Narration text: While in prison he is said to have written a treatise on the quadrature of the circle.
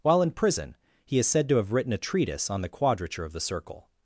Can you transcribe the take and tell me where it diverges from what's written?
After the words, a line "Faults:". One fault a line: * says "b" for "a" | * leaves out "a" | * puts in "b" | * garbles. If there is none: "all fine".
While in prison he is said to have written a treatise on the quadrature of the circle.
Faults:
all fine